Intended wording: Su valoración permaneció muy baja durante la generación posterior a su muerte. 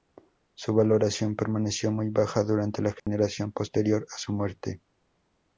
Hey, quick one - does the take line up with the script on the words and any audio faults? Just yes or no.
no